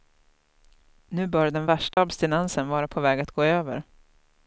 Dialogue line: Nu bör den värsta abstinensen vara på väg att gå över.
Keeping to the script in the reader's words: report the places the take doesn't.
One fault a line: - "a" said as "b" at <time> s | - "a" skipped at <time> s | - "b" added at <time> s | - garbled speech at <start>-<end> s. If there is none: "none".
none